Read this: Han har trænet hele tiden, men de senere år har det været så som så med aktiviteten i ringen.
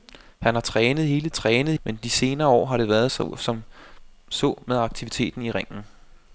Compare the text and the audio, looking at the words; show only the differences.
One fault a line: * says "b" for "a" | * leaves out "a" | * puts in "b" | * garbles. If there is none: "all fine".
* says "trænet" for "tiden"